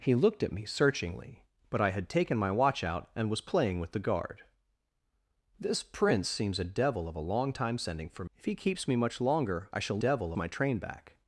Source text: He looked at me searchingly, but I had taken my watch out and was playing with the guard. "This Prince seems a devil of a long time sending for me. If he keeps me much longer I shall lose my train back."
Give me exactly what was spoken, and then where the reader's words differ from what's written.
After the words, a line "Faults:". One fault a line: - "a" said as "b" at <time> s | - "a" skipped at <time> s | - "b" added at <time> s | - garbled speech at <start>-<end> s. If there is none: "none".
He looked at me searchingly, but I had taken my watch out and was playing with the guard. "This Prince seems a devil of a long time sending for. If he keeps me much longer I shall devil my train back."
Faults:
- "me" skipped at 8.2 s
- "lose" said as "devil" at 10.0 s